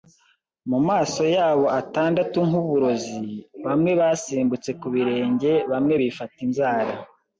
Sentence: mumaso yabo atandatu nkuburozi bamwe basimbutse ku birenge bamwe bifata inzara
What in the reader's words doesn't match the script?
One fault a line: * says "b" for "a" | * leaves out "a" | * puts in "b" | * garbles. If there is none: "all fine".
all fine